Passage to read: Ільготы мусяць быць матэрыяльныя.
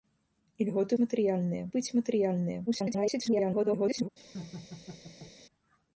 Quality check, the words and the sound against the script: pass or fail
fail